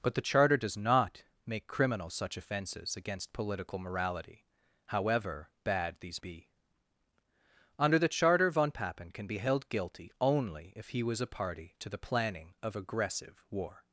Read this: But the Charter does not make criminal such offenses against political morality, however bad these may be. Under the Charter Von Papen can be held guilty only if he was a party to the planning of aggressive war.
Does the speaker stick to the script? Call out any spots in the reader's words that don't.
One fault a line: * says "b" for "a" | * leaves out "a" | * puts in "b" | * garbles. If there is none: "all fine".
* leaves out "may"